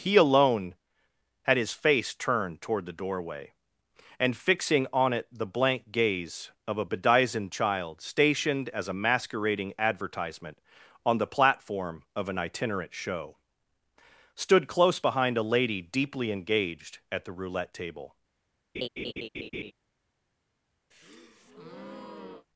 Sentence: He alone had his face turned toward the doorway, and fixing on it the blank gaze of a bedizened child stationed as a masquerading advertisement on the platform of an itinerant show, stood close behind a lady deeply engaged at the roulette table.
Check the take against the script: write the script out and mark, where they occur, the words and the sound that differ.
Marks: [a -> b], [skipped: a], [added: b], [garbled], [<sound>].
He alone had his face turned toward the doorway, and fixing on it the blank gaze of a bedizened child stationed as a masquerading advertisement on the platform of an itinerant show, stood close behind a lady deeply engaged at the roulette table. [laugh] [breath]